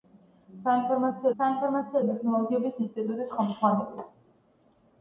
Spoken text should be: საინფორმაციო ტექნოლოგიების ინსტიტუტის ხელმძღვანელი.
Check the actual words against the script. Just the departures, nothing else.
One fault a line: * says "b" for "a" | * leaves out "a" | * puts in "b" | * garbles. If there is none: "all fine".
* puts in "საინფორმაციო"